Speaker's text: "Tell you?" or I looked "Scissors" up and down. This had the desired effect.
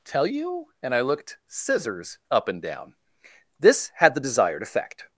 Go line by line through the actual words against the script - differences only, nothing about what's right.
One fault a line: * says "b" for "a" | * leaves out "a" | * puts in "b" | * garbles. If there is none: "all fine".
* says "and" for "or"